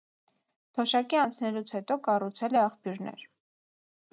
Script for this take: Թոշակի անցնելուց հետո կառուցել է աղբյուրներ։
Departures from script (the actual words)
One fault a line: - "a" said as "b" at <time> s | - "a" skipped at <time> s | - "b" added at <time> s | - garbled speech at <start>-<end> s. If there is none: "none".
none